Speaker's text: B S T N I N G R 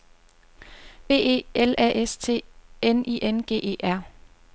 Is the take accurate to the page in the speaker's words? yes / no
no